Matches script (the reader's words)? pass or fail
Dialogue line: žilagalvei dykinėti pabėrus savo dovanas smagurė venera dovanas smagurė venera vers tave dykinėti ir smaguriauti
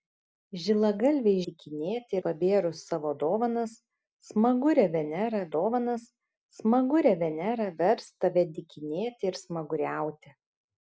pass